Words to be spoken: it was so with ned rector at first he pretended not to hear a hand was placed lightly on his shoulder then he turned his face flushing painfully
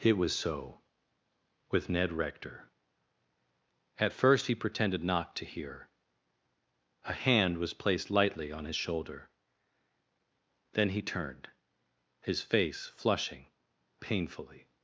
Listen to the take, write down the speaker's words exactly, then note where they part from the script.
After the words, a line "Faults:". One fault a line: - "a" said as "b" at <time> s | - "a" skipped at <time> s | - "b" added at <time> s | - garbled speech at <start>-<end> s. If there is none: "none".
it was so with ned rector at first he pretended not to hear a hand was placed lightly on his shoulder then he turned his face flushing painfully
Faults:
none